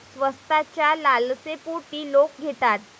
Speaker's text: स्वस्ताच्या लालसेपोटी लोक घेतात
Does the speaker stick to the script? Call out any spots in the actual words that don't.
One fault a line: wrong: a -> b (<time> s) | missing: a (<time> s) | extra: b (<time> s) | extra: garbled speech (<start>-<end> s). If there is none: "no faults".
no faults